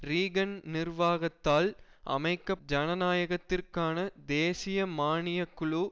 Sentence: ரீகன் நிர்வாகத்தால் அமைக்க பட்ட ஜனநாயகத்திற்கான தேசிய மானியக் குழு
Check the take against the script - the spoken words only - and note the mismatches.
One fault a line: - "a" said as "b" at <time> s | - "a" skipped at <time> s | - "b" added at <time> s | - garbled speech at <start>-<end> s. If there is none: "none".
- "பட்ட" skipped at 2.5 s